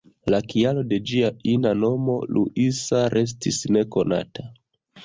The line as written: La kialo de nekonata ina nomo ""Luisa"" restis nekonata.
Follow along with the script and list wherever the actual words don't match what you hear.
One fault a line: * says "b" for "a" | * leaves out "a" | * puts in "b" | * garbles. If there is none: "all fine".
* says "ĝia" for "nekonata"